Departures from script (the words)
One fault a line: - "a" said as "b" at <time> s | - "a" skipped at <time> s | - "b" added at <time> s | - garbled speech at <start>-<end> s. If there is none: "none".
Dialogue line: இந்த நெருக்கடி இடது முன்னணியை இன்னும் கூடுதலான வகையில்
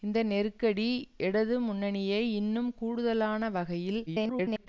- garbled speech at 4.1-4.7 s